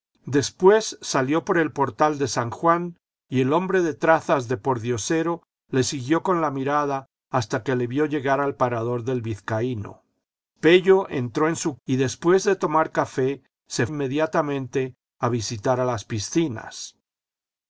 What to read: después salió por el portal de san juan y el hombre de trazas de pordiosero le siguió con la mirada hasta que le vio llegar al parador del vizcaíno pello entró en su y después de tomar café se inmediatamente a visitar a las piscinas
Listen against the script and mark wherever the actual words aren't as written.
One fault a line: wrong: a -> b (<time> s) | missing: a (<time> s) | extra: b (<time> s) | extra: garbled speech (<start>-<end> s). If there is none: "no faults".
no faults